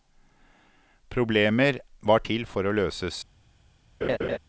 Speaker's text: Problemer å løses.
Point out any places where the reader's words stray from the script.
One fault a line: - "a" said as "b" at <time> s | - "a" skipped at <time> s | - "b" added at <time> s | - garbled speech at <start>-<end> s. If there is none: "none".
- "var til for" added at 2.0 s